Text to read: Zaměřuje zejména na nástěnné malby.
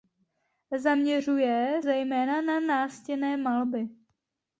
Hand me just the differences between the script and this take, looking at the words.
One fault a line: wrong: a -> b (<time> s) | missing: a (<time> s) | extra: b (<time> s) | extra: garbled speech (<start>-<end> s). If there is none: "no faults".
no faults